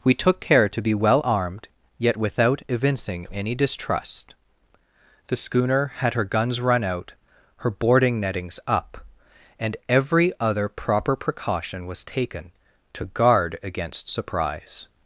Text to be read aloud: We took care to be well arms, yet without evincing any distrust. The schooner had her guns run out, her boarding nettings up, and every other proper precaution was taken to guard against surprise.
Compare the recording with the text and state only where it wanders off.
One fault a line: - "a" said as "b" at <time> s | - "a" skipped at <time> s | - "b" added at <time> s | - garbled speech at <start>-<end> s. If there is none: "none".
- "arms" said as "armed" at 1.2 s